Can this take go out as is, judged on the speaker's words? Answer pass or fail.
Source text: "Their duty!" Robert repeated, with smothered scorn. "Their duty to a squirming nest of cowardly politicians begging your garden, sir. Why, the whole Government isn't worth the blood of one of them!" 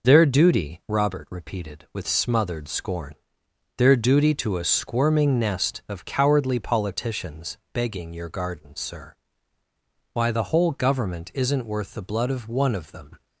pass